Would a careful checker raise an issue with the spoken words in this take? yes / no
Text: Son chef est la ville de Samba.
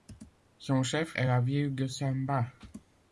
no